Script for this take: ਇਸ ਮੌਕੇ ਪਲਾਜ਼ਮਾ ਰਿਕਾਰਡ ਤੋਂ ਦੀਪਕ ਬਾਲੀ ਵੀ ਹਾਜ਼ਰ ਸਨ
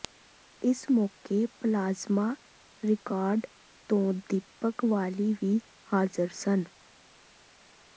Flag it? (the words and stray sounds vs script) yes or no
no